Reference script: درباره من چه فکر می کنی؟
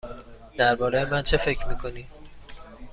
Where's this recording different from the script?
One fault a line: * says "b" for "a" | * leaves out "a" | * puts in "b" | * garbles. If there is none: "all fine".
all fine